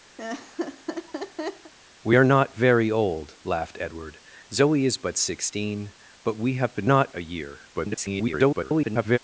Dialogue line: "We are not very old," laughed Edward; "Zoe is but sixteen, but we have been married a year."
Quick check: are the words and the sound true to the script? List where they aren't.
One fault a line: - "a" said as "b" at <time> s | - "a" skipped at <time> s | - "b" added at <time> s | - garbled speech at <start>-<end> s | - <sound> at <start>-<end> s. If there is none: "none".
- laugh at 0.2-1.7 s
- "married" said as "not" at 6.8 s
- garbled speech at 7.7-9.2 s